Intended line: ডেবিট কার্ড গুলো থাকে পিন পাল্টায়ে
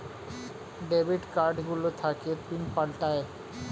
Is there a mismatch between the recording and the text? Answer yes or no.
no